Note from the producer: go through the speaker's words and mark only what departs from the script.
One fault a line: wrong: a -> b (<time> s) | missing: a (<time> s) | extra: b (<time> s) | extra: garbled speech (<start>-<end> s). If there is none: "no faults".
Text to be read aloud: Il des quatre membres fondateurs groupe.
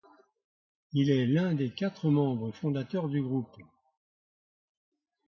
extra: est l'un (1.1 s)
extra: du (3.1 s)